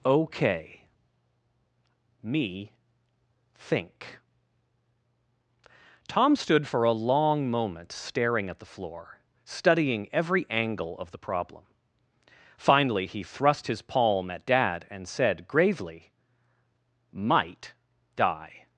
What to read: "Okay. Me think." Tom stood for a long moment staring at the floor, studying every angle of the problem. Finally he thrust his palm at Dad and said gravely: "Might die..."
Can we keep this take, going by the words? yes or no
yes